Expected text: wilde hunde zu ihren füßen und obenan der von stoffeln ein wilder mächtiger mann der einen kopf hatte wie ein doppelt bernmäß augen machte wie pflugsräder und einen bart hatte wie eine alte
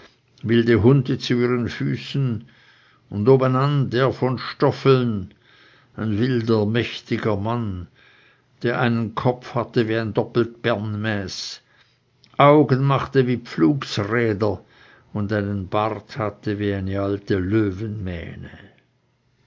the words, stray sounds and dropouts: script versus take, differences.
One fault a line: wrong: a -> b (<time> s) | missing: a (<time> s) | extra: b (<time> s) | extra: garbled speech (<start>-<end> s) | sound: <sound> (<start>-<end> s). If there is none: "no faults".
no faults